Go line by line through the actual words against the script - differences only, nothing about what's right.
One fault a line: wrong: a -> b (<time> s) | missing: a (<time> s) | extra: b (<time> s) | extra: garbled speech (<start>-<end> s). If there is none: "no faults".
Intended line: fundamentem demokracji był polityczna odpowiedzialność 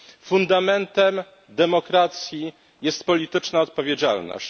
wrong: był -> jest (2.8 s)